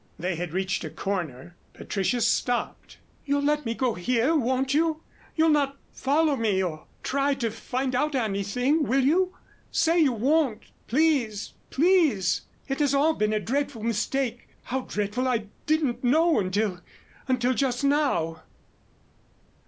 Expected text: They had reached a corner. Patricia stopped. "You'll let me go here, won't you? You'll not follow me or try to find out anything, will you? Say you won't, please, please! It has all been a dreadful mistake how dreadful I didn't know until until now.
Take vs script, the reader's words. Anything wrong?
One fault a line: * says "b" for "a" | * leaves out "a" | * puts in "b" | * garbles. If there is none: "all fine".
* puts in "just"